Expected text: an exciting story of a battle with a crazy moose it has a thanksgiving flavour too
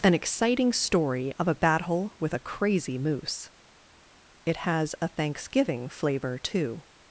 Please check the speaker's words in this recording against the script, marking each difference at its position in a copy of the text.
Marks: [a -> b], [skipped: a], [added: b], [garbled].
an exciting story of a battle with a crazy moose it has a thanksgiving flavour too